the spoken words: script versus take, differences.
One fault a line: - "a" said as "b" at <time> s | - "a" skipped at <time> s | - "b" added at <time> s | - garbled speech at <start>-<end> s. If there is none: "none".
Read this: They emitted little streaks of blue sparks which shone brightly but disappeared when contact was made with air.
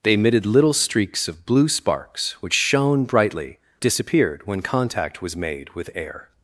- "but" skipped at 3.6 s